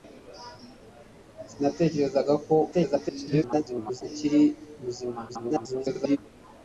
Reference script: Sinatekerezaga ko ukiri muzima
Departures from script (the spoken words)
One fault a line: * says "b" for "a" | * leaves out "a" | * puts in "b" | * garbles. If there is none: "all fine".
* garbles
* garbles